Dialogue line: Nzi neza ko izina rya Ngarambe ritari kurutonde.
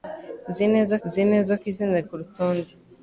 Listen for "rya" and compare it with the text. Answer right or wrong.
wrong